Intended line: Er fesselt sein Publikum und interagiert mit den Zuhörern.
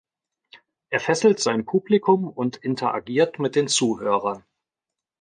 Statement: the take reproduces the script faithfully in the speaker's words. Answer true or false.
true